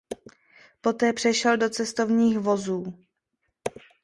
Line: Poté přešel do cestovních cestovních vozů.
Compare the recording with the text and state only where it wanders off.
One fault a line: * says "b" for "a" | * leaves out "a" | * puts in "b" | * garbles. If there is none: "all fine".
* leaves out "cestovních"